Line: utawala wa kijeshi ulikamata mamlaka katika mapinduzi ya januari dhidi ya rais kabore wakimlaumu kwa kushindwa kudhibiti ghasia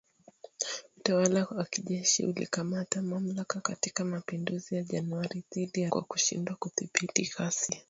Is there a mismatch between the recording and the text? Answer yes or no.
yes